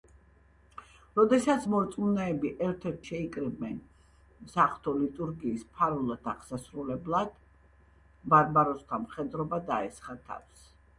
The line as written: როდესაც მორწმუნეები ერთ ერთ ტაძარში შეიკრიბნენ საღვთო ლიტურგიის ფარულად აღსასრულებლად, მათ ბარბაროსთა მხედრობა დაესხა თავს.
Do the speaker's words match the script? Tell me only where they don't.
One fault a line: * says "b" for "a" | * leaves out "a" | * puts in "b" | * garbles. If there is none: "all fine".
* leaves out "ტაძარში"
* leaves out "მათ"